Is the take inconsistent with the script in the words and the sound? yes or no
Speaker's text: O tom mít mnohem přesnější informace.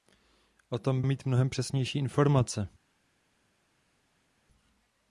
no